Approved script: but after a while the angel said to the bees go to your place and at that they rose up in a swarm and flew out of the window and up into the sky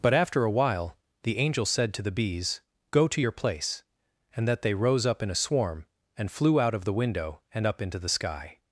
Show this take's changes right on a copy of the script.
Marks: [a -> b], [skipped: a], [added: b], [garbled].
but after a while the angel said to the bees go to your place and [skipped: at] that they rose up in a swarm and flew out of the window and up into the sky